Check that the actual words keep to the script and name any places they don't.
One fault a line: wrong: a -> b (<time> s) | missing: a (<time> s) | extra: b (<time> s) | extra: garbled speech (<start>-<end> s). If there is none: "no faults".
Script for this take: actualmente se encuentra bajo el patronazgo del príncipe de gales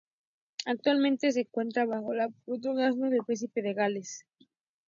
no faults